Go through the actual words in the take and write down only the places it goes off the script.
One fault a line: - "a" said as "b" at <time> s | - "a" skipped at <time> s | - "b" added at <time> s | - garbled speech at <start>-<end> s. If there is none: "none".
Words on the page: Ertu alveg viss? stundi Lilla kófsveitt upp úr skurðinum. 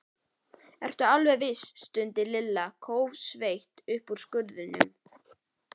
none